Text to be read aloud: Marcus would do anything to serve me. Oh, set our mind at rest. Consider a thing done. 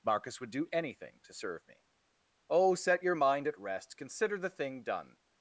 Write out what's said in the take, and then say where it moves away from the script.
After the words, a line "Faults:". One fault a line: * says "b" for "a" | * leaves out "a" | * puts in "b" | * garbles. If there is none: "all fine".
Marcus would do anything to serve me. Oh, set your mind at rest. Consider the thing done.
Faults:
* says "your" for "our"
* says "the" for "a"